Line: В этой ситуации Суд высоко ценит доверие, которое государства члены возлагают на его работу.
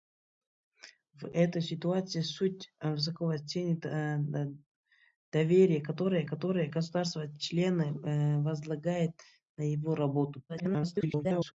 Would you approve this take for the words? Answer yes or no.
no